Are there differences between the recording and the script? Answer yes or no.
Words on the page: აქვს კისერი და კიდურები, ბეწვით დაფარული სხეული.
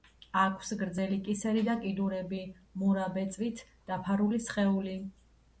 yes